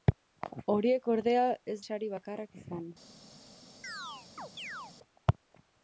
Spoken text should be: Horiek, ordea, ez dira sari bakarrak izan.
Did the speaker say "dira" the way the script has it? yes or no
no